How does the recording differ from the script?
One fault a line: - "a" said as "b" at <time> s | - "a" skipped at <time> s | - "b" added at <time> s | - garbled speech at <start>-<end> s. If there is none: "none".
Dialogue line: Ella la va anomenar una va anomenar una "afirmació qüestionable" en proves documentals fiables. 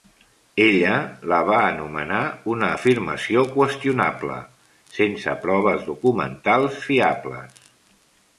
- "va anomenar una" skipped at 2.7 s
- "en" said as "sense" at 5.0 s